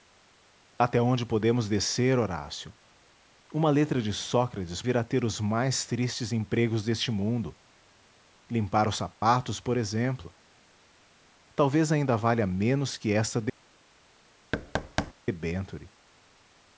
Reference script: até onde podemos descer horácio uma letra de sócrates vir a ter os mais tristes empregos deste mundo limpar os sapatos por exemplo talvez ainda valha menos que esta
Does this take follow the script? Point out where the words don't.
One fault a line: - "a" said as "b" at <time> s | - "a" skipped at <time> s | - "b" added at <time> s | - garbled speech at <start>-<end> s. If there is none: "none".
none